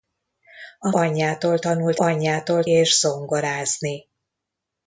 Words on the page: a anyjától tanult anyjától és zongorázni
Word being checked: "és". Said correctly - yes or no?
yes